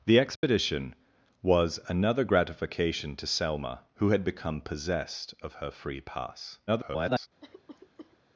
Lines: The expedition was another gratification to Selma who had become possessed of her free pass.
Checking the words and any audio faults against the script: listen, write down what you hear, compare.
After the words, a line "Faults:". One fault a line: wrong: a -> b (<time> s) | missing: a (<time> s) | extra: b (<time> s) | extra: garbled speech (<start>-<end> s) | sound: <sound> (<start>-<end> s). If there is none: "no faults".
The expedition was another gratification to Selma who had become possessed of her free pass. [garbled]
Faults:
sound: dropout (0.4-0.4 s)
extra: garbled speech (6.7-7.3 s)
sound: cough (7.4-8.2 s)